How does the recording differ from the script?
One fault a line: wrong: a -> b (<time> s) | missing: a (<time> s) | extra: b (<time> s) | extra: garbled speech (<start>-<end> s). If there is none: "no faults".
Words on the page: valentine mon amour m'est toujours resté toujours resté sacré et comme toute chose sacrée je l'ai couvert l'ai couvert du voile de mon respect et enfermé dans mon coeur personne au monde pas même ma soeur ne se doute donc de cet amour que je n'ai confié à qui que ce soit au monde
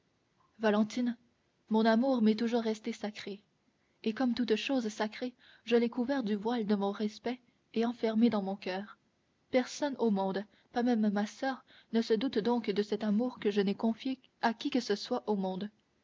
missing: toujours resté (2.9 s)
missing: l'ai couvert (6.2 s)